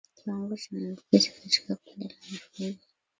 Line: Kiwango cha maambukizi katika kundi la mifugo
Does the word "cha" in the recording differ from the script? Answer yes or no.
no